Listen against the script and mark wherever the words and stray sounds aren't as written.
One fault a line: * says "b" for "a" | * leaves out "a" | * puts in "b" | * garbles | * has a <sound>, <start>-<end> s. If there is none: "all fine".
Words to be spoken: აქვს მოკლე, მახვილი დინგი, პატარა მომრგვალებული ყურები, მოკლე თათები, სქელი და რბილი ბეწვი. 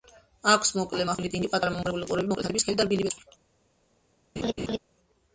* has a laugh, 4.4-4.8 s